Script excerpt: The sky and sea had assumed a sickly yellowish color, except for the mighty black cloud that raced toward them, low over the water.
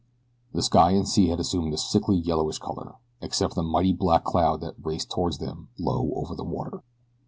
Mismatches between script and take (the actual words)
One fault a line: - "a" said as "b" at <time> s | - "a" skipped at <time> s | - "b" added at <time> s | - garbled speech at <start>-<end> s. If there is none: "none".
none